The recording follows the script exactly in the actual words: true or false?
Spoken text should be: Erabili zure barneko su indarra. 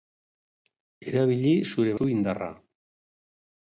false